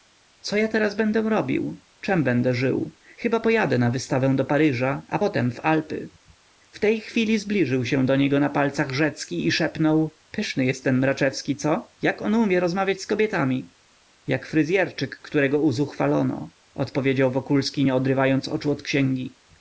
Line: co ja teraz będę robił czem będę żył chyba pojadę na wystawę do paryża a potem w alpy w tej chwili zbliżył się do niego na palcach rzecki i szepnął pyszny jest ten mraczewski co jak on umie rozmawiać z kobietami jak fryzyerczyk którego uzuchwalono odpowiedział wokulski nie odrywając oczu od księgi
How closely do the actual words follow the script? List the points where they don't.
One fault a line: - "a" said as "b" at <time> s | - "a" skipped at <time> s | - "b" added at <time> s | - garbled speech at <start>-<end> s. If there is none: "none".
none